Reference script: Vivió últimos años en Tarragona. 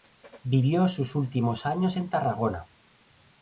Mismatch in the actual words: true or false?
true